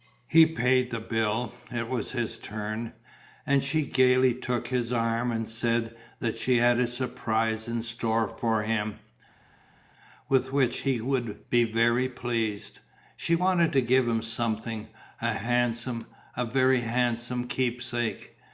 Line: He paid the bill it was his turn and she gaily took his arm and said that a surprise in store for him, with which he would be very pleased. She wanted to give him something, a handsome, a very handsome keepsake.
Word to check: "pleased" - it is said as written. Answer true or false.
true